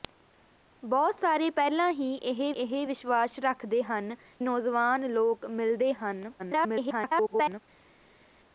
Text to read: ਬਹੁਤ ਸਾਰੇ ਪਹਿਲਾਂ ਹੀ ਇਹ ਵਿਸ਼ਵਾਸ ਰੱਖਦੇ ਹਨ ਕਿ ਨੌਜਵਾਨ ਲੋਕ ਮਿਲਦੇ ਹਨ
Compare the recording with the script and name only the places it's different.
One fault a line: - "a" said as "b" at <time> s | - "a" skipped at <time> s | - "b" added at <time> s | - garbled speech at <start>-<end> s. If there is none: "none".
- "ਇਹ" added at 2.6 s
- "ਕਿ" skipped at 4.2 s
- garbled speech at 6.4-7.6 s